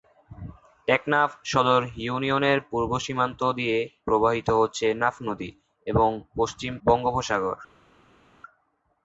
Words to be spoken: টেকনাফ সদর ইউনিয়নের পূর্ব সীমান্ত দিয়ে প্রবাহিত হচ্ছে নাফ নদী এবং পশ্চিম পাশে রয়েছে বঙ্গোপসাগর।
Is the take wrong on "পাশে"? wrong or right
wrong